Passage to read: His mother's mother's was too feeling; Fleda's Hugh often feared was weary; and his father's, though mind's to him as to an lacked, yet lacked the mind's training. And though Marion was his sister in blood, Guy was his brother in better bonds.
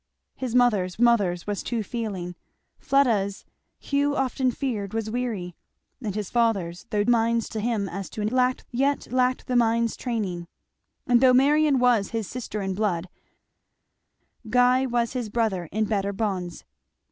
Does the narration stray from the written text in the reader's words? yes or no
no